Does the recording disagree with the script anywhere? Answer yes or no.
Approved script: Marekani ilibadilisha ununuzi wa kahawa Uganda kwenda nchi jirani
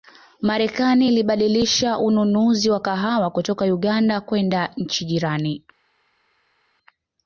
yes